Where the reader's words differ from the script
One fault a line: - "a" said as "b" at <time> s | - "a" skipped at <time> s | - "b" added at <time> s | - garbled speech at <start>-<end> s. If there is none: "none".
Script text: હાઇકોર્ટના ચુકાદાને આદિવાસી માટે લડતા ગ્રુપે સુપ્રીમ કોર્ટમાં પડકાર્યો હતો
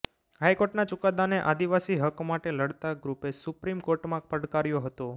- "હક" added at 2.0 s